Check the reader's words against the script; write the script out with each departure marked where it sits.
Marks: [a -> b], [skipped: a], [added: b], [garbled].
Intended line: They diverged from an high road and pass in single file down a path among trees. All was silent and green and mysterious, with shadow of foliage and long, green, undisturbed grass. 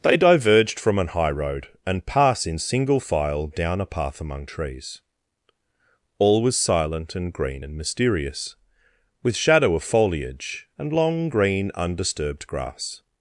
They diverged from an high road and pass in single file down a path among trees. All was silent and green and mysterious, with shadow of foliage and long, green, undisturbed grass.